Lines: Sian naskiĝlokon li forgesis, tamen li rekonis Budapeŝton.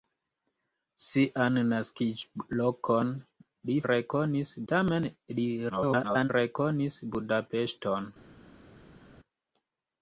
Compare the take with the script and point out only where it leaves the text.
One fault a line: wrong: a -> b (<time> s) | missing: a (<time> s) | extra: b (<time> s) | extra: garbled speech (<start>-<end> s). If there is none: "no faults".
wrong: forgesis -> rekonis (3.9 s)
extra: garbled speech (5.7-6.3 s)